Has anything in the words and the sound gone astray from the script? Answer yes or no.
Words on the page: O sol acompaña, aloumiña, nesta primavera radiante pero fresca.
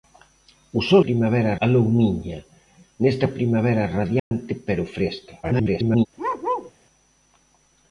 yes